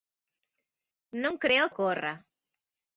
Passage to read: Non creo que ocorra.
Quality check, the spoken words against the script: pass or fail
fail